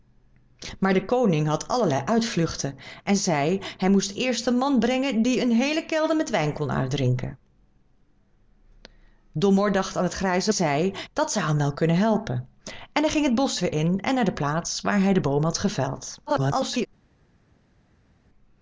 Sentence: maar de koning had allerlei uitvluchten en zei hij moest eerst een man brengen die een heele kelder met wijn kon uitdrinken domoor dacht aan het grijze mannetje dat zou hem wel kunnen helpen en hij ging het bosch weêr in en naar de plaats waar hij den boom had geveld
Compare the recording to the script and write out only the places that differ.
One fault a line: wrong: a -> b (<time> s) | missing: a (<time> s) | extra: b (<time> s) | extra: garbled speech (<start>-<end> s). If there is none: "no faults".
wrong: mannetje -> zei (10.5 s)
extra: garbled speech (16.3-16.9 s)